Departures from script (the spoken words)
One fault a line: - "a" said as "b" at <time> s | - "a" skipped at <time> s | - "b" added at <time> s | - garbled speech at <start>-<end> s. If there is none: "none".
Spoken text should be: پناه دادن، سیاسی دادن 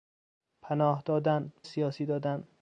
none